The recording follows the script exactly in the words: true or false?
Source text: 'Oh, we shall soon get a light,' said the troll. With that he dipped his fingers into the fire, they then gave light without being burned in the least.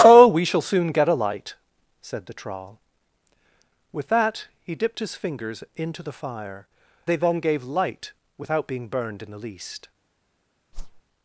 true